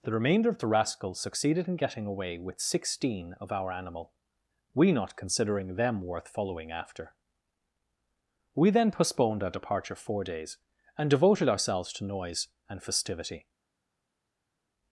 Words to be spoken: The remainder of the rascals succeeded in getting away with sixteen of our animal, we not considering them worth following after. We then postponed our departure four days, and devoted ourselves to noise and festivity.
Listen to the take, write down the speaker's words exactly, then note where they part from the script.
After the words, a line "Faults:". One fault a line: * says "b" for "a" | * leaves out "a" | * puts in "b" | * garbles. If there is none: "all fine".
The remainder of the rascals succeeded in getting away with sixteen of our animal, we not considering them worth following after. We then postponed our departure four days, and devoted ourselves to noise and festivity.
Faults:
all fine